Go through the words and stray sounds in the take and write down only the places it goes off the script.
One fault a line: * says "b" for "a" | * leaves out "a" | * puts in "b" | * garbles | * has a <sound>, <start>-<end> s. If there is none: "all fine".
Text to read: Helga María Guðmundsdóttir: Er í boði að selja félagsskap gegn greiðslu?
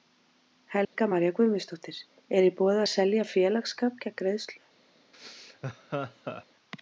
* has a dropout, 0.8-1.0 s
* has a laugh, 5.1-6.5 s